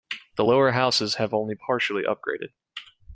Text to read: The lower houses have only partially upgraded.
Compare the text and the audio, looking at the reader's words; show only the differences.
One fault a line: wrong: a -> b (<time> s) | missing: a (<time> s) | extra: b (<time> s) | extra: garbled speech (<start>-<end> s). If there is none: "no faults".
no faults